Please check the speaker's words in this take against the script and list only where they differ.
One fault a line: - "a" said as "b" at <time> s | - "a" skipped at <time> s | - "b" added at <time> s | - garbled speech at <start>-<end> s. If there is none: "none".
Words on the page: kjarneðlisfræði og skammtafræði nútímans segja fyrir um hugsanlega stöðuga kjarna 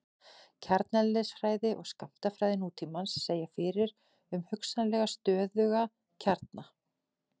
none